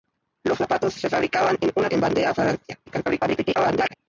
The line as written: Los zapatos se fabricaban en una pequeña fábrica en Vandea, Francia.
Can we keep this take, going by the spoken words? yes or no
no